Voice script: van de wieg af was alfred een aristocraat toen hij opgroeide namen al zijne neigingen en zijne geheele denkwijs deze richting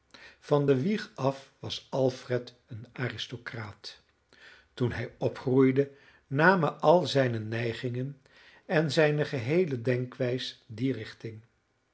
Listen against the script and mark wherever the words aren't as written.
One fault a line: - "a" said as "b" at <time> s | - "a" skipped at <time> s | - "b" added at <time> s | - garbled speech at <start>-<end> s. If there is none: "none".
- "deze" said as "die" at 10.7 s